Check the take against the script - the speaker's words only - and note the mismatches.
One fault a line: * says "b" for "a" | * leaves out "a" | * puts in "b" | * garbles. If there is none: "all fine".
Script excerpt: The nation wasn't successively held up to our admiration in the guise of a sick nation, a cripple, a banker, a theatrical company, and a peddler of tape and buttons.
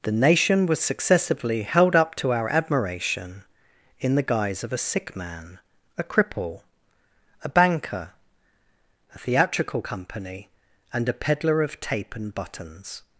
* says "was" for "wasn't"
* says "man" for "nation"